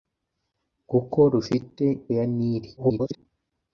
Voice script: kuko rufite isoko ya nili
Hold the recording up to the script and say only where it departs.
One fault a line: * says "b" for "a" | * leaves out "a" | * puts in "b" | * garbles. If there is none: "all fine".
* leaves out "isoko"
* garbles